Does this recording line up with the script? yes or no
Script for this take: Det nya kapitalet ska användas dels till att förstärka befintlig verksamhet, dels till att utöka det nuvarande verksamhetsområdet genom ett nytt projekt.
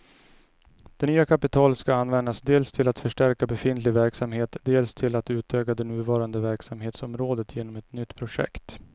yes